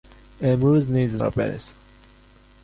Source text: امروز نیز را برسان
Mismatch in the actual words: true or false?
false